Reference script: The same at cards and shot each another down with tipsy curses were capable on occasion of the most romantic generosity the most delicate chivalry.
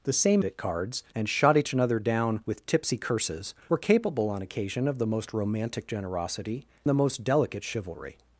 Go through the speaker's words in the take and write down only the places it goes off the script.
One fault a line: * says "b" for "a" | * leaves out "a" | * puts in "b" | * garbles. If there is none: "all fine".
all fine